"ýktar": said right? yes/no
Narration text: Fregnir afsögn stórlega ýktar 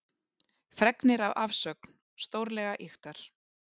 yes